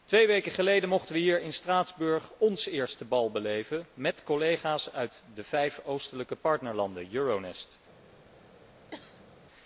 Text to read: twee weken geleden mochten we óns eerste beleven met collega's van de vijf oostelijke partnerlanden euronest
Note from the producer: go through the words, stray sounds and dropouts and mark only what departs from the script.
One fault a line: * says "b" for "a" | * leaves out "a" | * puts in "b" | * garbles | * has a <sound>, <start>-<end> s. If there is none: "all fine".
* puts in "hier in straatsburg"
* puts in "bal"
* says "uit" for "van"
* has a cough, 8.9-9.3 s